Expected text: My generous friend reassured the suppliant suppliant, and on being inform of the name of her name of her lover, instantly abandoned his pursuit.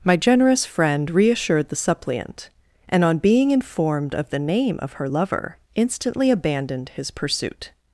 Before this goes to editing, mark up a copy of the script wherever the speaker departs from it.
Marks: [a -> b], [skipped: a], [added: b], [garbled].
My generous friend reassured the suppliant [skipped: suppliant,] and on being [inform -> informed] of the name of her [skipped: name of her] lover, instantly abandoned his pursuit.